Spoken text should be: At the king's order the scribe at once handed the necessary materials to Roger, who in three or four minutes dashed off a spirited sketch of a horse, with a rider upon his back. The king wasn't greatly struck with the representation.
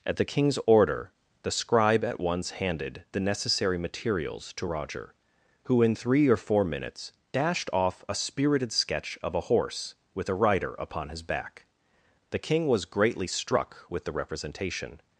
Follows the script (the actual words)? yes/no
no